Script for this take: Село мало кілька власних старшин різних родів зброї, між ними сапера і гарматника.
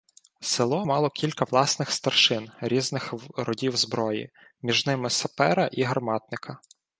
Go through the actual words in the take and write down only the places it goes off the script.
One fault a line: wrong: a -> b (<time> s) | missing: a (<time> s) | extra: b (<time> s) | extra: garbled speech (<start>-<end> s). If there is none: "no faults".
no faults